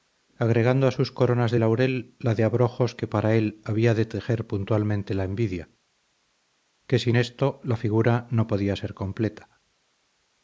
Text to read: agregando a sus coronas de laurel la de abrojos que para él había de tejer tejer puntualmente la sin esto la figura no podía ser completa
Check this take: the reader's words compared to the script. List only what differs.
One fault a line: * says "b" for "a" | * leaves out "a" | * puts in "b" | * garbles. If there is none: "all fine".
* leaves out "tejer"
* puts in "envidia que"